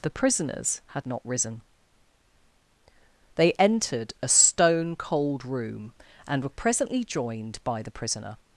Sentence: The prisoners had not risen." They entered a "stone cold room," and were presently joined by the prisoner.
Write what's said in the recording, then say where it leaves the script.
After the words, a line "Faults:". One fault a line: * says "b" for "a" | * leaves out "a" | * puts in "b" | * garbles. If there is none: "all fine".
The prisoners had not risen." They entered a "stone cold room," and were presently joined by the prisoner.
Faults:
all fine